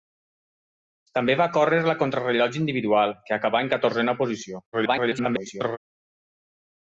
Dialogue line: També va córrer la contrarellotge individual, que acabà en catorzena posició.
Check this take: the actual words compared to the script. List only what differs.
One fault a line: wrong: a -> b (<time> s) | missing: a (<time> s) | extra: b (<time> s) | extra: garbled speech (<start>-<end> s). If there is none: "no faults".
extra: garbled speech (4.7-5.8 s)